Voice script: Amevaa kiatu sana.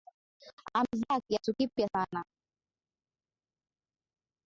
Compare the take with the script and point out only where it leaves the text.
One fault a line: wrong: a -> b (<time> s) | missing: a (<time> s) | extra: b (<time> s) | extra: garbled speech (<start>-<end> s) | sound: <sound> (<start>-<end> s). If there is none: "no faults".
extra: kipya (1.6 s)